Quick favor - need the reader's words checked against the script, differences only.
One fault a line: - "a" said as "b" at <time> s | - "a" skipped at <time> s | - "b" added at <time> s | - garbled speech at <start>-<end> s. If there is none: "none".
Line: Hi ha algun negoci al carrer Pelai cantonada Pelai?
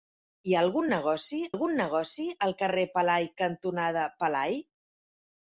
- "algun negoci" added at 1.5 s